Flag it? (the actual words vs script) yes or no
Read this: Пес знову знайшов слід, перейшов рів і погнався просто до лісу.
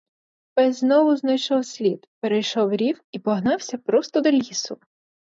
no